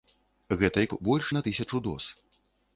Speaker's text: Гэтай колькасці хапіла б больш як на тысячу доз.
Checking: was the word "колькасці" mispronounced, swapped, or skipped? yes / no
yes